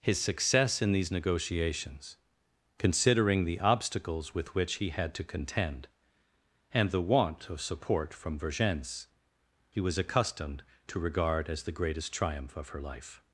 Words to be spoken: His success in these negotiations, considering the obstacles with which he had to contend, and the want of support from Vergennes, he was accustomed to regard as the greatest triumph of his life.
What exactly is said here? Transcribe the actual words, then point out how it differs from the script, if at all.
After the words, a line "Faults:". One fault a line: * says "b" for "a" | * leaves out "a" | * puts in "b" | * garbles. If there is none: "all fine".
His success in these negotiations, considering the obstacles with which he had to contend, and the want of support from Vergennes, he was accustomed to regard as the greatest triumph of her life.
Faults:
* says "her" for "his"